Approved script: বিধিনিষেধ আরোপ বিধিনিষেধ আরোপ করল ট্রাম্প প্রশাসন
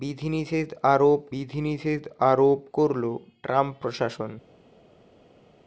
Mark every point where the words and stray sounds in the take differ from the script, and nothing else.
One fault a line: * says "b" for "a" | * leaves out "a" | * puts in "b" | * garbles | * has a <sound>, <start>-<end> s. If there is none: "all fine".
all fine